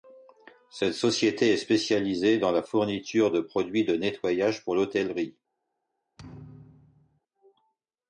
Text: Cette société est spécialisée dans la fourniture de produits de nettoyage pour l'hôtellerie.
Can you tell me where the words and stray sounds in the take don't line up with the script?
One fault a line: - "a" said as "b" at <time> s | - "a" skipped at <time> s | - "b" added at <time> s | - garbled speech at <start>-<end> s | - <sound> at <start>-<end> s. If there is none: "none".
- thud at 6.2-7.2 s